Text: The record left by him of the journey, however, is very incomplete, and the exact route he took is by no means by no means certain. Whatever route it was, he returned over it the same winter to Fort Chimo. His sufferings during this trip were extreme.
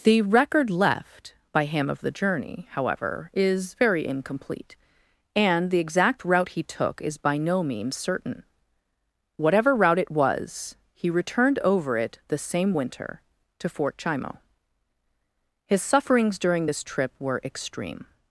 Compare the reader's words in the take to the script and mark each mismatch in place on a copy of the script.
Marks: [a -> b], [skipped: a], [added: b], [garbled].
The record left by him of the journey, however, is very incomplete, and the exact route he took is by no means [skipped: by no means] certain. Whatever route it was, he returned over it the same winter to Fort Chimo. His sufferings during this trip were extreme.